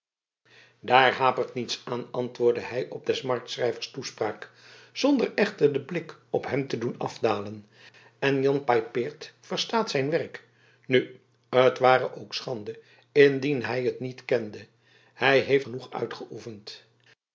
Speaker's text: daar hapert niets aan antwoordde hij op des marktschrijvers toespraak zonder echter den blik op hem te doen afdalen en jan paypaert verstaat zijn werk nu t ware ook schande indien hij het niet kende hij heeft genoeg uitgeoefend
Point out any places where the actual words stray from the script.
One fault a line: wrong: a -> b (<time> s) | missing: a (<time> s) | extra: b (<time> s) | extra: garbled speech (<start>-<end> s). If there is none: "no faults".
no faults